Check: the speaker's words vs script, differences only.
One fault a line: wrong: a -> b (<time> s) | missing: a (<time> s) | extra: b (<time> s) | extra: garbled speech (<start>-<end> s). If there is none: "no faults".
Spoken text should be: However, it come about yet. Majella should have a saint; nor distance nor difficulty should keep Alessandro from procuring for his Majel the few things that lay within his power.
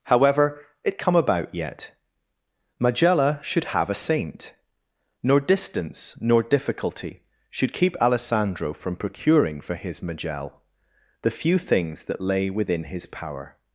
no faults